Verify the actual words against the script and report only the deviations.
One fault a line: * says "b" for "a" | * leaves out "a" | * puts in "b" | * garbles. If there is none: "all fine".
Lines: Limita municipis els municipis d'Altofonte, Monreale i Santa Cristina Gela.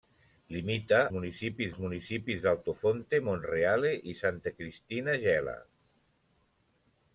all fine